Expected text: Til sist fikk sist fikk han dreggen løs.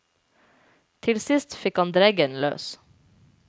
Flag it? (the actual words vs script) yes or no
yes